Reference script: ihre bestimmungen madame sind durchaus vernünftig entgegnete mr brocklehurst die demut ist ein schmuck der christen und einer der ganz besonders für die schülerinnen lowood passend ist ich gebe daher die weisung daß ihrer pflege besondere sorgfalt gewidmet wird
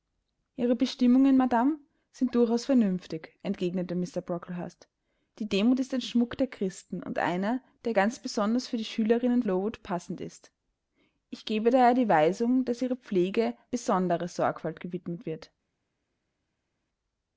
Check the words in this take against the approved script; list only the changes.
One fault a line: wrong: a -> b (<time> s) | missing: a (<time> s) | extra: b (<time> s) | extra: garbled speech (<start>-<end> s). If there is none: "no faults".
no faults